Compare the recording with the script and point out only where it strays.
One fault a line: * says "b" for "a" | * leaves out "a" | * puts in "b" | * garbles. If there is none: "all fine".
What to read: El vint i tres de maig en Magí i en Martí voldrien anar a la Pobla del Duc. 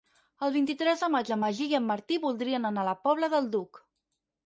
all fine